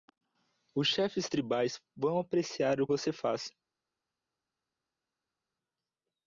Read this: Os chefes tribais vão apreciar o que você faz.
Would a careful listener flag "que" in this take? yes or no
yes